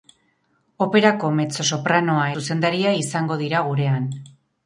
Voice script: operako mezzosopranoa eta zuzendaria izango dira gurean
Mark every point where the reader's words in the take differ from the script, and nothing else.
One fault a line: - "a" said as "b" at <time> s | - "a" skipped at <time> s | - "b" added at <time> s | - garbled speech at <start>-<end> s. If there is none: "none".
- "eta" skipped at 2.2 s